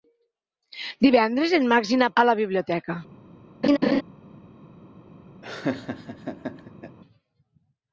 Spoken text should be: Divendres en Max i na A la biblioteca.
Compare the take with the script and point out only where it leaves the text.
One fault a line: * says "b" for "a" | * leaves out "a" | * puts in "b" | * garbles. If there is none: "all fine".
all fine